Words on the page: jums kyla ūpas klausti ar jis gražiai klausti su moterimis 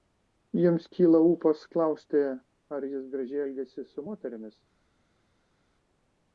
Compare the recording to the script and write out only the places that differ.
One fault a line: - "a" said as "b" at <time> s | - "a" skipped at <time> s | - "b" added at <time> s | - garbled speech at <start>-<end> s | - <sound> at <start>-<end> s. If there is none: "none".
- "klausti" said as "elgiasi" at 3.5 s